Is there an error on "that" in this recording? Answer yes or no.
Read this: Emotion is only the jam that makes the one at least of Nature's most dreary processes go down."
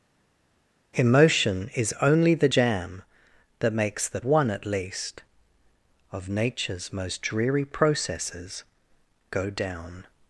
no